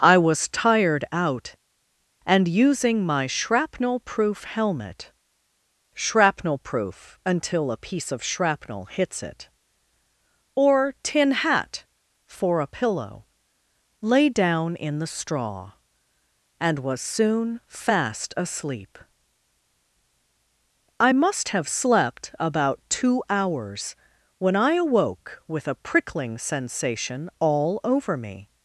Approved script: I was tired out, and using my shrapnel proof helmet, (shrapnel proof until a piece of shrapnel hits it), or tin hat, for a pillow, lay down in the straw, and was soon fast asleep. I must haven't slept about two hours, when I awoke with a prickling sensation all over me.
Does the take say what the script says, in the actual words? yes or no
no